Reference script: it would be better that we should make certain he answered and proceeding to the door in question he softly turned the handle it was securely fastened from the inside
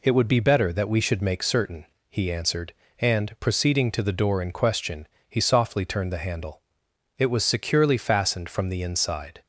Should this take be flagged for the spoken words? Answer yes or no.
no